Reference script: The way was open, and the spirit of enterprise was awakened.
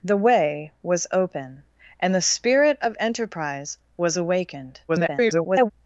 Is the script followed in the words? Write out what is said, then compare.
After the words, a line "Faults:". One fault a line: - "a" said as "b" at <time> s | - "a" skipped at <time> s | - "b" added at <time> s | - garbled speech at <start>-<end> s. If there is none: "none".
The way was open, and the spirit of enterprise was awakened. [garbled]
Faults:
- garbled speech at 4.9-5.7 s